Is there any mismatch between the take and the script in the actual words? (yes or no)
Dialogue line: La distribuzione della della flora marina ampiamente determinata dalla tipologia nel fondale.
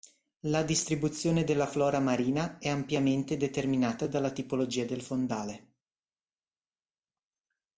yes